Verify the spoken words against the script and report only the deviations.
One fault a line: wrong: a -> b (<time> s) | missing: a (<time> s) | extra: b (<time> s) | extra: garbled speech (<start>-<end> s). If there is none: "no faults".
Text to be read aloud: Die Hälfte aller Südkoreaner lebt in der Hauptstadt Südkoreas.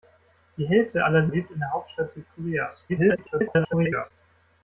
missing: Südkoreaner (1.3 s)
extra: garbled speech (2.9-4.1 s)